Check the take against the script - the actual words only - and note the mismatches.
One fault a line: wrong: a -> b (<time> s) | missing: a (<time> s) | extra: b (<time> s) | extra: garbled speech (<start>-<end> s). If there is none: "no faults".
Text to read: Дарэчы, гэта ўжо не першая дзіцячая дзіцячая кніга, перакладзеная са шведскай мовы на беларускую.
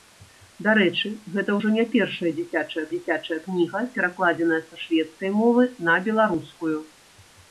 no faults